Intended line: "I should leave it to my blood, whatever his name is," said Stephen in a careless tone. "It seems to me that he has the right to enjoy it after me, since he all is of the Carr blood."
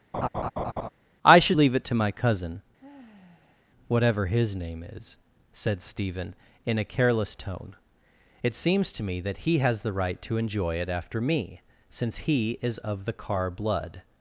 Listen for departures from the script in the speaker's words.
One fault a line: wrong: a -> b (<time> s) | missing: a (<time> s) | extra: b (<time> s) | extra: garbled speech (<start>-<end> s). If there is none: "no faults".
wrong: blood -> cousin (2.1 s)
missing: all (12.6 s)